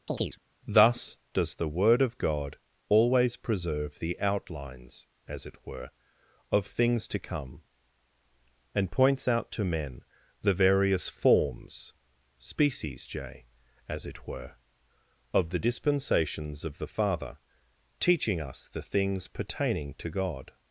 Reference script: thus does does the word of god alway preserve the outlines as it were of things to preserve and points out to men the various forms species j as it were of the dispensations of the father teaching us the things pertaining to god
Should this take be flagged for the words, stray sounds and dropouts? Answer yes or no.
yes